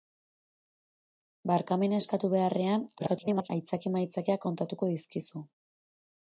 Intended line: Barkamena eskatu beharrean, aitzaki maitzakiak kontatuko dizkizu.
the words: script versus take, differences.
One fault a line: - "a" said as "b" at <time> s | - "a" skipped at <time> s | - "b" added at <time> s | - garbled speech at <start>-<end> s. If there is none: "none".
- garbled speech at 3.0-3.5 s